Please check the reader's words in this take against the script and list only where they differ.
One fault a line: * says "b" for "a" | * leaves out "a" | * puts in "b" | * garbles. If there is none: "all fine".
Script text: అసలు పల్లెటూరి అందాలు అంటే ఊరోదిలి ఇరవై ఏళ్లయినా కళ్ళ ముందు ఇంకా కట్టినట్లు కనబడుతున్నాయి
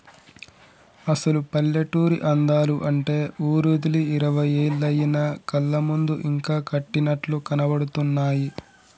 all fine